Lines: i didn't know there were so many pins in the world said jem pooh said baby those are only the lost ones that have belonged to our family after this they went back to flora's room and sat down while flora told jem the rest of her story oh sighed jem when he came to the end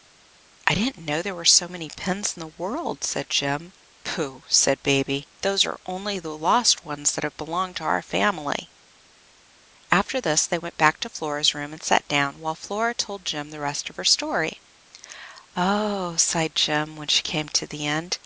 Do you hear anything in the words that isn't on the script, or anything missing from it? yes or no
yes